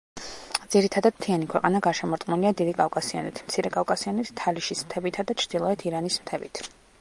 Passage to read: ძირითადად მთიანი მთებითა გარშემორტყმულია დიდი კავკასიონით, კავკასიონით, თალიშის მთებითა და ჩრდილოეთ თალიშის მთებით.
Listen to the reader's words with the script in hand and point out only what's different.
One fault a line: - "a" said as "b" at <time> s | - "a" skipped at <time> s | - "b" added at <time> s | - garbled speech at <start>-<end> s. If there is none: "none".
- "მთებითა" said as "ქვეყანა" at 1.5 s
- "მცირე" added at 3.5 s
- "თალიშის" said as "ირანის" at 5.9 s